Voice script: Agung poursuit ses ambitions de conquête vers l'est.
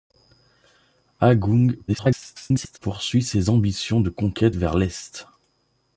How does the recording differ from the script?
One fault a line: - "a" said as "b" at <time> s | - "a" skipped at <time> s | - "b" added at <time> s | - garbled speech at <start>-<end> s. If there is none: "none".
- garbled speech at 1.9-2.8 s